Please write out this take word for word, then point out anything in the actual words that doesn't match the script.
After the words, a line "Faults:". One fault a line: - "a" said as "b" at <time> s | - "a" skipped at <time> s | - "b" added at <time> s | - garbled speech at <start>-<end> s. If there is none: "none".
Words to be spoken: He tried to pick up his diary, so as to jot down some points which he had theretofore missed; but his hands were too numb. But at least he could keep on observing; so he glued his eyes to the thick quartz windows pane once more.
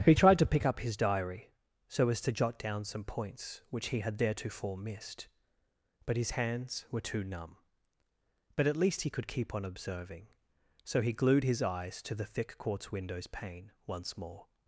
He tried to pick up his diary, so as to jot down some points which he had theretofore missed; but his hands were too numb. But at least he could keep on observing; so he glued his eyes to the thick quartz windows pane once more.
Faults:
none